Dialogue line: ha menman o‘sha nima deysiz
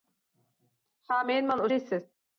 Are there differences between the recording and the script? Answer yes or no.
yes